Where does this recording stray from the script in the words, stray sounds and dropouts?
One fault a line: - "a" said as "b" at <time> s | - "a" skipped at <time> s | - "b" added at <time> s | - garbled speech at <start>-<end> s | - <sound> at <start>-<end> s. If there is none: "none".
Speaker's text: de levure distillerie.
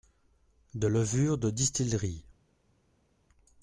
- "de" added at 1.4 s